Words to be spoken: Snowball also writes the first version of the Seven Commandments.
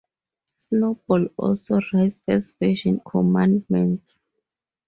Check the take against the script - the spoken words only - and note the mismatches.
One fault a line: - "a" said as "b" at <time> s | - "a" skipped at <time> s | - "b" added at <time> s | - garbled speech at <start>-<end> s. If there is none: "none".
- "the" skipped at 2.2 s
- "of the Seven" skipped at 3.0 s